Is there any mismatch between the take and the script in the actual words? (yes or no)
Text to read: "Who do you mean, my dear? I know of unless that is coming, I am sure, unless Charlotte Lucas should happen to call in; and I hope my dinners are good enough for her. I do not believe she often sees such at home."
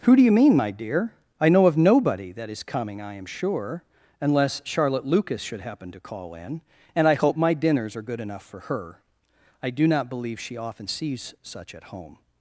yes